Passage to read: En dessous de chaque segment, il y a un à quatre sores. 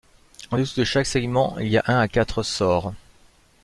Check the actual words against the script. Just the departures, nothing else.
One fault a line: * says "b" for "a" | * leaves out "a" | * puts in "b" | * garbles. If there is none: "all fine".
all fine